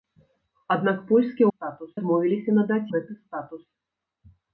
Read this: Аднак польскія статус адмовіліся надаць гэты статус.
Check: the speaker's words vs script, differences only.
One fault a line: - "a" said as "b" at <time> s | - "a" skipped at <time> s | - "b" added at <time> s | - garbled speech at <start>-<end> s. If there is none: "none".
none